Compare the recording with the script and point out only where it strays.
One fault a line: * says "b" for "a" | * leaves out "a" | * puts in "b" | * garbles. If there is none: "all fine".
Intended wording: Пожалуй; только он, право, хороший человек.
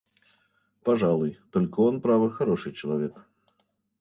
all fine